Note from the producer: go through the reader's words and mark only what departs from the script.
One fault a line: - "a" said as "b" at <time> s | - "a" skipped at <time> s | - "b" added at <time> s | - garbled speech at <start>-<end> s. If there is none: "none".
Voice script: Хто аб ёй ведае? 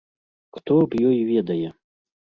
none